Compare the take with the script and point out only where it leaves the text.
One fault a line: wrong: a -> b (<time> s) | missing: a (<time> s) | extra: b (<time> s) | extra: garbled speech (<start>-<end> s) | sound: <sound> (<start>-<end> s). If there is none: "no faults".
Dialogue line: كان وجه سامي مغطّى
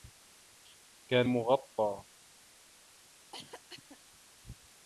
missing: وجه سامي (1.3 s)
sound: cough (3.3-4.0 s)